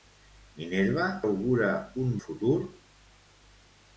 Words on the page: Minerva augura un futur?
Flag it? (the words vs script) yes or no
no